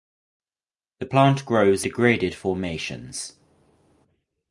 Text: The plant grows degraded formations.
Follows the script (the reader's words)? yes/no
yes